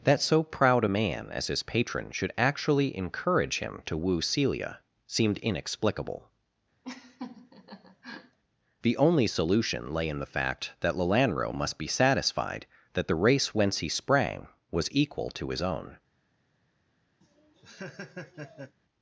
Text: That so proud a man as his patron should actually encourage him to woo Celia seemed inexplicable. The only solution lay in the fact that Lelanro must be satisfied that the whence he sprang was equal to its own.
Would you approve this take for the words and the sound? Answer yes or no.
no